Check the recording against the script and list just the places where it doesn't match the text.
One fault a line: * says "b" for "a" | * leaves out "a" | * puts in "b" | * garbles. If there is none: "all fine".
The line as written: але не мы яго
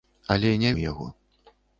all fine